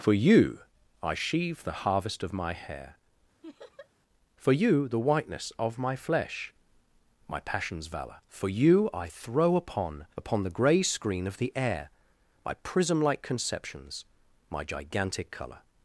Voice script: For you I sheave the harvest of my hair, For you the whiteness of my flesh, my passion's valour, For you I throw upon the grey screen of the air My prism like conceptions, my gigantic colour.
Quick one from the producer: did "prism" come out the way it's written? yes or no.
yes